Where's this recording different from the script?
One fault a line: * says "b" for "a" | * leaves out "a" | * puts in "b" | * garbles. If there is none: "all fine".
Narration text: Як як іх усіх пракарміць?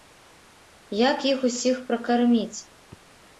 * leaves out "як"